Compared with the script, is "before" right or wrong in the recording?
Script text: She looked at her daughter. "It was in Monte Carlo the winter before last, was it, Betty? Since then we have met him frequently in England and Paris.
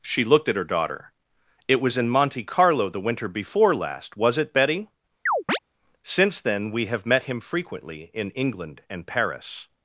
right